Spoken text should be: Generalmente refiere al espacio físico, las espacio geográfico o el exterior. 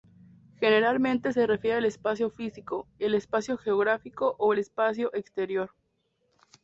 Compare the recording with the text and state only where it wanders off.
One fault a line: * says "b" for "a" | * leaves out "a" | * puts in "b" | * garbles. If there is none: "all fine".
* puts in "se"
* says "el" for "las"
* puts in "espacio"